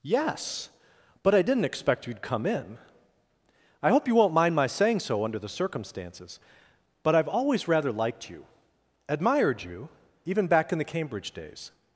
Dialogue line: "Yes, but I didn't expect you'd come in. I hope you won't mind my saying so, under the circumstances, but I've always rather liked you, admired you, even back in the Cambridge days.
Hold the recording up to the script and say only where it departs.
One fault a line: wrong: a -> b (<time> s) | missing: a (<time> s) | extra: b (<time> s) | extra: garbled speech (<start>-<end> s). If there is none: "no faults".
no faults